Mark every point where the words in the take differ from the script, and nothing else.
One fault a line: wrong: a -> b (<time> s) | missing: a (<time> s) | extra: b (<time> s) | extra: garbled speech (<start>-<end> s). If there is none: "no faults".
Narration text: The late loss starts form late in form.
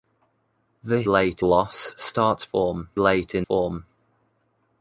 no faults